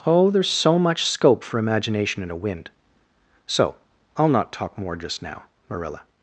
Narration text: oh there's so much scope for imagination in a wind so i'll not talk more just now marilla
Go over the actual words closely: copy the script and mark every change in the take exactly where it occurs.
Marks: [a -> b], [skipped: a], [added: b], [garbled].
oh there's so much scope for imagination in a wind so i'll not talk more just now marilla